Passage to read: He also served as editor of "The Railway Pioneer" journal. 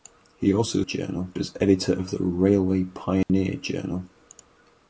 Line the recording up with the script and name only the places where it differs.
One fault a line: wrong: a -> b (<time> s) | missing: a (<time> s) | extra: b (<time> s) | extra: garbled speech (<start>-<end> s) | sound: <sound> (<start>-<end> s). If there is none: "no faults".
wrong: served -> journal (0.8 s)
sound: dropout (3.2-3.3 s)